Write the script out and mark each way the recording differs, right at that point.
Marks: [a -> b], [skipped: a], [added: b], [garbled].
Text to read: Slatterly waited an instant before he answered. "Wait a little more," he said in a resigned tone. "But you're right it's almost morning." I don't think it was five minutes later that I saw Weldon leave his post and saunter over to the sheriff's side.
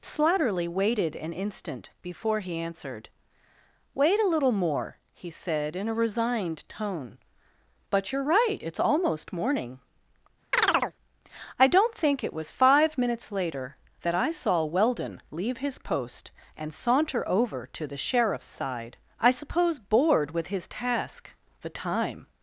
Slatterly waited an instant before he answered. "Wait a little more," he said in a resigned tone. "But you're right it's almost morning." I don't think it was five minutes later that I saw Weldon leave his post and saunter over to the sheriff's side. [added: I suppose bored with his task the time]